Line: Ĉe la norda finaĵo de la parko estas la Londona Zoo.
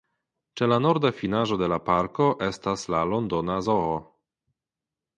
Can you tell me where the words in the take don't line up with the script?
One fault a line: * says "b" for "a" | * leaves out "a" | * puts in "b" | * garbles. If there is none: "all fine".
all fine